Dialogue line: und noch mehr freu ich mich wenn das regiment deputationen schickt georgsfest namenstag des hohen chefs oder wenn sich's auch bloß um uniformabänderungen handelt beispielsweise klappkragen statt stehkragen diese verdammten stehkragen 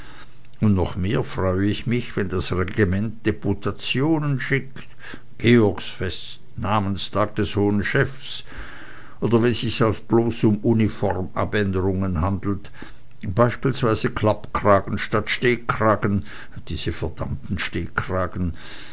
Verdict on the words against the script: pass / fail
pass